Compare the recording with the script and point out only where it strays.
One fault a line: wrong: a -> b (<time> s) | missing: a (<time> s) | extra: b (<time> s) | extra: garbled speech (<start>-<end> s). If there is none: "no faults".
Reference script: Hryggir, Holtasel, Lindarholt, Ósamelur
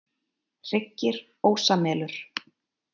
missing: Holtasel Lindarholt (1.2 s)